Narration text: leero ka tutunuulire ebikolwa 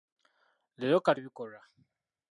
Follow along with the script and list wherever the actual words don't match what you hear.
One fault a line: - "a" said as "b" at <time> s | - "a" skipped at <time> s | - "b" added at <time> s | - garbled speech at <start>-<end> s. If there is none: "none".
- "tutunuulire" skipped at 1.1 s